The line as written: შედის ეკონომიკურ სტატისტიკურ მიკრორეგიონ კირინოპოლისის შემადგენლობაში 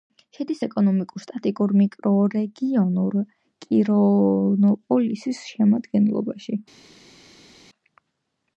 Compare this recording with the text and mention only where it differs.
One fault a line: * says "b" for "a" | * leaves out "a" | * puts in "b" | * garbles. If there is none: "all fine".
all fine